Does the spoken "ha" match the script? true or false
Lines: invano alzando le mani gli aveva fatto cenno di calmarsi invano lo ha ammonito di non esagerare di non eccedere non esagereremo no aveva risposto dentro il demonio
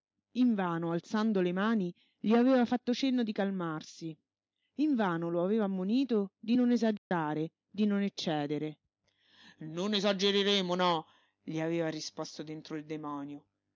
false